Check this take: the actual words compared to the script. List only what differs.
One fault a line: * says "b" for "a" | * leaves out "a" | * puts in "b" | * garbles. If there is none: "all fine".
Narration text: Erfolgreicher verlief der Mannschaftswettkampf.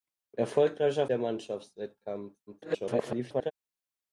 * leaves out "verlief"
* garbles